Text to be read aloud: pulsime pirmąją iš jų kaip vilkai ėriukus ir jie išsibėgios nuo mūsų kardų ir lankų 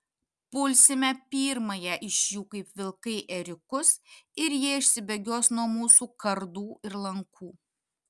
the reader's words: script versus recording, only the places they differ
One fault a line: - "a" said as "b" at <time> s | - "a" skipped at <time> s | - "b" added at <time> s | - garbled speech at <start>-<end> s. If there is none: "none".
none